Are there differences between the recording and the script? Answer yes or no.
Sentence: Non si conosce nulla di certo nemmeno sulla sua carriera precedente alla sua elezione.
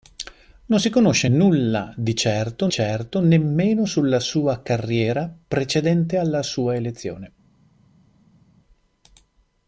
yes